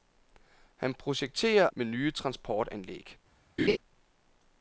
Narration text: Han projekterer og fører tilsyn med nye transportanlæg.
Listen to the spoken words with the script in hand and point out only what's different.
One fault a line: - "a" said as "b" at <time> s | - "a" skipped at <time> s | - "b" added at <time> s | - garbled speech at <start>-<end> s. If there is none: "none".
- "og fører tilsyn" skipped at 1.7 s